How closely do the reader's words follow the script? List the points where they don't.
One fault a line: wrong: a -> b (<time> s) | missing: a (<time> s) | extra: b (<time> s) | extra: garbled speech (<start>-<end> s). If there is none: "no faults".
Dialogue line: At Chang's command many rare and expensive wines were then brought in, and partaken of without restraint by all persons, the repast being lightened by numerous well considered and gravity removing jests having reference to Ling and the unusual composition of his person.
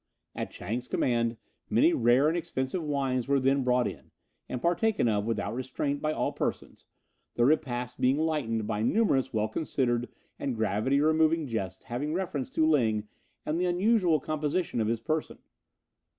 no faults